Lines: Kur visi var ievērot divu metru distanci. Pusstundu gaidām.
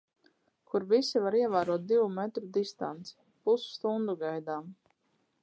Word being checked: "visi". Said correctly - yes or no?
yes